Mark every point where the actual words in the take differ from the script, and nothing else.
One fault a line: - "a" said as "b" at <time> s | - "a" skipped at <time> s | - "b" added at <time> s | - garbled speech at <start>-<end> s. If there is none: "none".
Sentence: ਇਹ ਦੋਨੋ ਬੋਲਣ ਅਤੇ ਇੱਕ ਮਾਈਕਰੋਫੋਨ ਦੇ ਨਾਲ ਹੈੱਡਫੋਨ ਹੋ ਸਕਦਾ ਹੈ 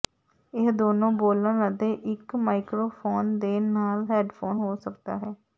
none